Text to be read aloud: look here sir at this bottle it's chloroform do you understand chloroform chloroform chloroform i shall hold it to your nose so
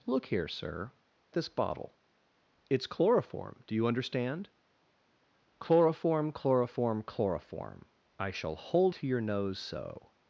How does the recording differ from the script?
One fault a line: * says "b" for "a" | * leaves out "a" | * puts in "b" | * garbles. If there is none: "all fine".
* leaves out "at"
* leaves out "it"